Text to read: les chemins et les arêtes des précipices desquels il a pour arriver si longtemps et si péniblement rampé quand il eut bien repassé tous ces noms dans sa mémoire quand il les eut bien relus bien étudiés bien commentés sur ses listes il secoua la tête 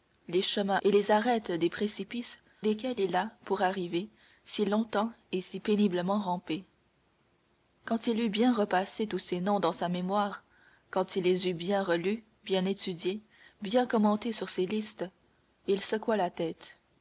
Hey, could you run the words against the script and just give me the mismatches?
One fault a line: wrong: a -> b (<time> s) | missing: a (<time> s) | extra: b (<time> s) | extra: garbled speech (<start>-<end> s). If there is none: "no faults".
no faults